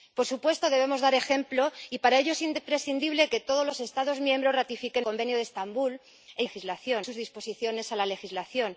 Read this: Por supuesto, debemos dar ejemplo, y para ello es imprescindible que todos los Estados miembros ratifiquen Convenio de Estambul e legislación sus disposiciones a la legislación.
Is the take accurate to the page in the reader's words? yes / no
yes